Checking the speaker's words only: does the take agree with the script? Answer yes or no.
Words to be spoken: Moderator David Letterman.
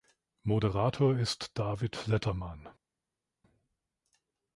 no